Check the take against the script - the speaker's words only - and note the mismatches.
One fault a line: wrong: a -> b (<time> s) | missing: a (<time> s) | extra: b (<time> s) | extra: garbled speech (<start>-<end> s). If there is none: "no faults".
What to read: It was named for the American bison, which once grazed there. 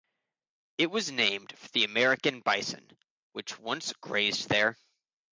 no faults